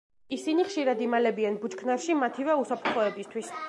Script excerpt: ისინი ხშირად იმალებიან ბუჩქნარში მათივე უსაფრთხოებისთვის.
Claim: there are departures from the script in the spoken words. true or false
false